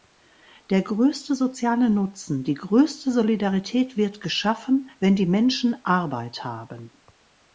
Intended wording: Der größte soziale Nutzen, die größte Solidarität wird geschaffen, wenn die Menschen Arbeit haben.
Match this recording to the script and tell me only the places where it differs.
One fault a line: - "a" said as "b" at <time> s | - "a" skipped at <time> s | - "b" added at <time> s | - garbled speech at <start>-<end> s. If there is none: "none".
none